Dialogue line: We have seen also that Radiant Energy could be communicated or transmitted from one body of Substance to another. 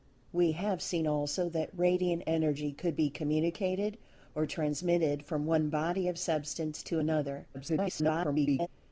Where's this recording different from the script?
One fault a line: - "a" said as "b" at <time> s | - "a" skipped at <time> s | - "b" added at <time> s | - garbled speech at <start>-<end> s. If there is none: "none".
- garbled speech at 7.5-8.7 s